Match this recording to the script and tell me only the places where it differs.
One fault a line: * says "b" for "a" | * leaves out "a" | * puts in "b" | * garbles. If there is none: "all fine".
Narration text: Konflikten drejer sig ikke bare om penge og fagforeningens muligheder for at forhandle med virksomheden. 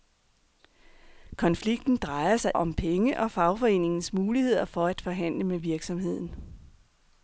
* leaves out "ikke bare"